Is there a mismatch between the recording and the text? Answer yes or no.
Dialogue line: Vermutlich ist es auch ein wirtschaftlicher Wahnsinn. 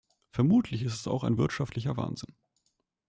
no